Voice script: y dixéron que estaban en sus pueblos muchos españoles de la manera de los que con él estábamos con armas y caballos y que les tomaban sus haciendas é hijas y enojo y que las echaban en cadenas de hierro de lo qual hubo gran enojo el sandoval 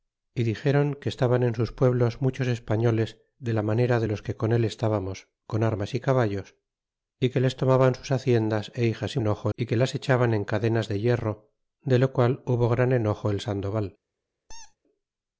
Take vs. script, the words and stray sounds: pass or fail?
fail